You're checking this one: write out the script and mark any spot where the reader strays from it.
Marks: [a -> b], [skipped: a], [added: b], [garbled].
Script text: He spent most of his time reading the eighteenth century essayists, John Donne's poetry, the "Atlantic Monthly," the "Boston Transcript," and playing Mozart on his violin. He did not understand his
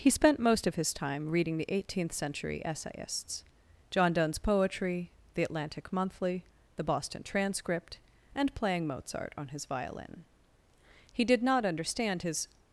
He spent most of his time reading the eighteenth century essayists, John Donne's poetry, the "Atlantic Monthly," the "Boston Transcript," and playing Mozart on his violin. He did not understand his